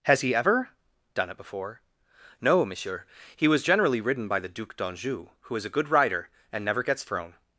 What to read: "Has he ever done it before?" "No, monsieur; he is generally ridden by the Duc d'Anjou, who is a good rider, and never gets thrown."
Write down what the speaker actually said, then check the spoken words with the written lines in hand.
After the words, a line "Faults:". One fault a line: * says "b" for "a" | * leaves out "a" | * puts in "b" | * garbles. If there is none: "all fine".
"Has he ever done it before?" "No, monsieur; he was generally ridden by the Duc d'Anjou, who is a good rider, and never gets thrown."
Faults:
* says "was" for "is"